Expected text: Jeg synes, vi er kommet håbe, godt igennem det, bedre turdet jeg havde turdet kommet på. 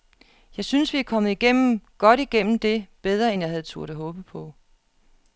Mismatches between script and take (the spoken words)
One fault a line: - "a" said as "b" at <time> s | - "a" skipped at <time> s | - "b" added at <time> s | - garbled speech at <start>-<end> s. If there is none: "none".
- "håbe" said as "igennem" at 1.3 s
- "turdet" said as "end" at 3.3 s
- "kommet" said as "håbe" at 3.9 s